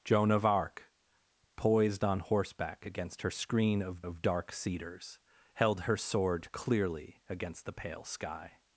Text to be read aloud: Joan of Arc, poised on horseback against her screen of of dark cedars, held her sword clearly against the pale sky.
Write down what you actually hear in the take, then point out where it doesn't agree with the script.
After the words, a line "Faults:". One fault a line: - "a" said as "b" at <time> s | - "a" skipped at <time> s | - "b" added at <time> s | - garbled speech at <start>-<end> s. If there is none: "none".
Joan of Arc, poised on horseback against her screen of of dark cedars, held her sword clearly against the pale sky.
Faults:
none